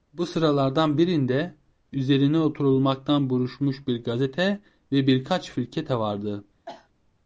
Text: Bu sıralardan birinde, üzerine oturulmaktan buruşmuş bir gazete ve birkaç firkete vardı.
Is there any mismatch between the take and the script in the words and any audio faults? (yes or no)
yes